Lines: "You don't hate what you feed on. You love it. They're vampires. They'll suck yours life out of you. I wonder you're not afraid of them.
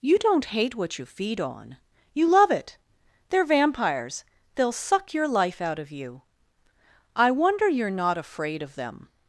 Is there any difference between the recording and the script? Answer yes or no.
yes